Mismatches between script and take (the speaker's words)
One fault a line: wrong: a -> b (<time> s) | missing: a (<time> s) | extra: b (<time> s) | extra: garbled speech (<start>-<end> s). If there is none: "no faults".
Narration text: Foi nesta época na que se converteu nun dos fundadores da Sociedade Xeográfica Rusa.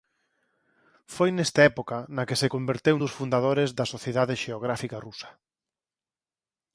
missing: nun (3.0 s)